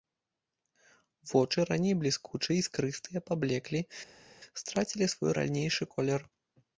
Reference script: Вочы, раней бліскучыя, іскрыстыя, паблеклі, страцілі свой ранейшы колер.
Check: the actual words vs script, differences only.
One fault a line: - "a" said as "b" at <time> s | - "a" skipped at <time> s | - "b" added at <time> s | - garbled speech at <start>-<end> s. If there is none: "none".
none